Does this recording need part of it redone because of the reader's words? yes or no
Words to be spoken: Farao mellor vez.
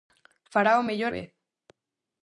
no